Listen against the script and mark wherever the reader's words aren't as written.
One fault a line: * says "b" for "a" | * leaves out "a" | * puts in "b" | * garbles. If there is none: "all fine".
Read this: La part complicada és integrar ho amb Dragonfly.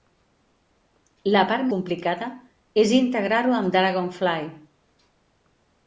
all fine